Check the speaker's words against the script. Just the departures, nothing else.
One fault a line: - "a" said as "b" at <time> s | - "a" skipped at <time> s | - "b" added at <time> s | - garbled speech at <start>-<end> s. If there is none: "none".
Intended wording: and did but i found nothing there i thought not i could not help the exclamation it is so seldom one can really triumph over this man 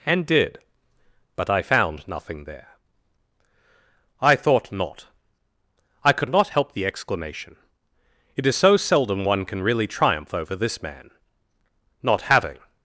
- "not having" added at 12.0 s